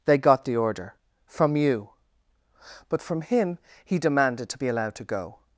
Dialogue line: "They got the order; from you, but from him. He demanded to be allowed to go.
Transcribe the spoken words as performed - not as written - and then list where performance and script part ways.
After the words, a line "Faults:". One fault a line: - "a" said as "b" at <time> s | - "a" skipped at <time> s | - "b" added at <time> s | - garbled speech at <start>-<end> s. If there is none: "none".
"They got the order; from you, but from him. He demanded to be allowed to go.
Faults:
none